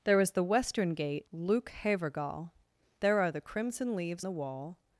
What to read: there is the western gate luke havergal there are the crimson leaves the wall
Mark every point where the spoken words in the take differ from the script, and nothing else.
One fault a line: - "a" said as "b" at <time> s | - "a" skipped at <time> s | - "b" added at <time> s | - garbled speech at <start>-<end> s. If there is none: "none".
none